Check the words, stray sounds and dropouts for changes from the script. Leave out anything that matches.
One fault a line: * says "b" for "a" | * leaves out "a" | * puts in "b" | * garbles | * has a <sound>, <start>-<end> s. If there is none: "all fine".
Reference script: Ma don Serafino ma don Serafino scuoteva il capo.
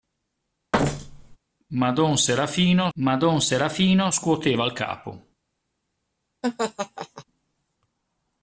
* has a thud, 0.7-1.4 s
* has a laugh, 6.4-7.2 s